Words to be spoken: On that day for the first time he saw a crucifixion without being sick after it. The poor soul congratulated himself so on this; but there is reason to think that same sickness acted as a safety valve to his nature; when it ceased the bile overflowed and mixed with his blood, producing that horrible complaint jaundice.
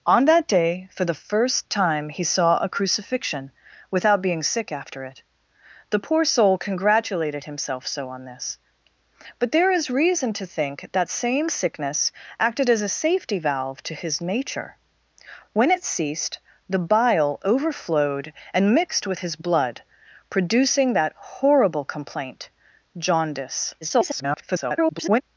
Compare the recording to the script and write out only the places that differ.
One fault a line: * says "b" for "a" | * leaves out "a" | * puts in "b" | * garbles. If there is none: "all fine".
* garbles